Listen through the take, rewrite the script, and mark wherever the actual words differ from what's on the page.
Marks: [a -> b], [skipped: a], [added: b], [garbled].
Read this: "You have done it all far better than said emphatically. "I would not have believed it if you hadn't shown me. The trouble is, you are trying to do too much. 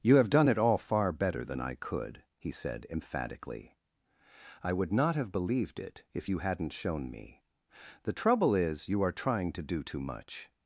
"You have done it all far better than [added: I could he] said emphatically. "I would not have believed it if you hadn't shown me. The trouble is, you are trying to do too much.